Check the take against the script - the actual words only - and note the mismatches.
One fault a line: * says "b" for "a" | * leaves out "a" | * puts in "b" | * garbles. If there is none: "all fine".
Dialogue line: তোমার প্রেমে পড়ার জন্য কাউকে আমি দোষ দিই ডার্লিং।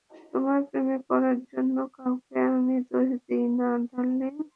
* puts in "না"